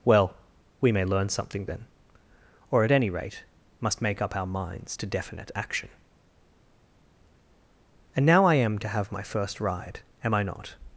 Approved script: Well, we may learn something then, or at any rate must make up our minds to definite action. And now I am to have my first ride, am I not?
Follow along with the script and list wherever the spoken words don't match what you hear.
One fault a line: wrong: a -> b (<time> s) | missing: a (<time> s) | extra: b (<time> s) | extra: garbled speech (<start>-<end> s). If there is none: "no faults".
no faults